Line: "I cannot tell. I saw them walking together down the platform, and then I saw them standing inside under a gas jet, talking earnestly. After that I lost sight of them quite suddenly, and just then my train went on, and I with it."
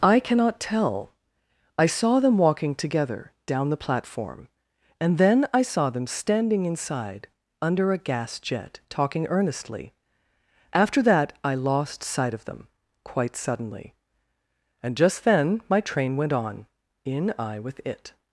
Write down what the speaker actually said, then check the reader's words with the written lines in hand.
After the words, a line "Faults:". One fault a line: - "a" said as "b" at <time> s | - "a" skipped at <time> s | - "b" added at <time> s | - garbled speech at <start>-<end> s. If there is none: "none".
"I cannot tell. I saw them walking together down the platform, and then I saw them standing inside under a gas jet, talking earnestly. After that I lost sight of them quite suddenly, and just then my train went on, in I with it."
Faults:
- "and" said as "in" at 17.0 s